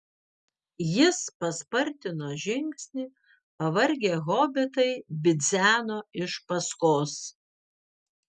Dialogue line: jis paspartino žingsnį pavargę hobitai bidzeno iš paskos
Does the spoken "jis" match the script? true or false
true